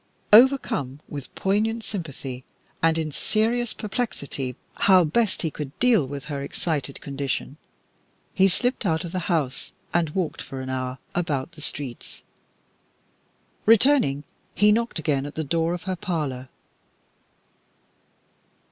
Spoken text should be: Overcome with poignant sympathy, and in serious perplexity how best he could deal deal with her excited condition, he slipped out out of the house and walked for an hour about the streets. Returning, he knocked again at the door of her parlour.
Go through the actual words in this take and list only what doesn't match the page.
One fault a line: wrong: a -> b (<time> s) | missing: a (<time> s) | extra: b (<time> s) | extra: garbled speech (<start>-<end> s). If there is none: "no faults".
missing: deal (6.1 s)
missing: out (9.0 s)